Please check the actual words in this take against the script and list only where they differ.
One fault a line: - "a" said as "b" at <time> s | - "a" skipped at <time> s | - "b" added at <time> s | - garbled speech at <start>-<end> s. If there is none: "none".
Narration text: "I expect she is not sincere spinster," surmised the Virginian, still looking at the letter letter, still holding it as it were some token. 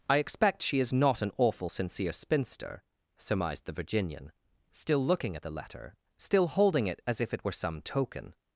- "an awful" added at 1.2 s
- "letter" skipped at 5.9 s
- "if" added at 7.2 s